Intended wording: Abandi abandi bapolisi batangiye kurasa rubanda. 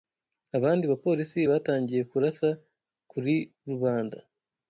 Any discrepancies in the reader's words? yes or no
yes